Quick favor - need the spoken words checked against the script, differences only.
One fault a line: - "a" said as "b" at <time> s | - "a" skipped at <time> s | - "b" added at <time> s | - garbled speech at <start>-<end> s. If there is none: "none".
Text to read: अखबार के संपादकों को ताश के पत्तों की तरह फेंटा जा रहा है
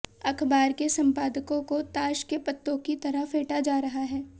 none